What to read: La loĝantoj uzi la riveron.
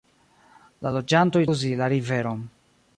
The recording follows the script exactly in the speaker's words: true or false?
true